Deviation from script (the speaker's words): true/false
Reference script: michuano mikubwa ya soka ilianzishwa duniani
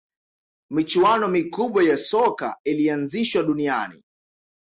false